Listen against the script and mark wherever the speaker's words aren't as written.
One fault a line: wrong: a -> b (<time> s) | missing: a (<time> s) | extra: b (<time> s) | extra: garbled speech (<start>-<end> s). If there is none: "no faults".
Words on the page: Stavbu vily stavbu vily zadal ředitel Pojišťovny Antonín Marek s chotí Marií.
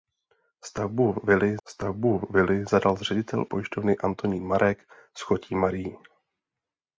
no faults